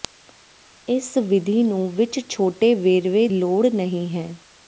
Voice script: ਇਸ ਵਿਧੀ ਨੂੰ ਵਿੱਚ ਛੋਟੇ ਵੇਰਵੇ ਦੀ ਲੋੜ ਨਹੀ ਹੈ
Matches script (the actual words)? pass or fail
fail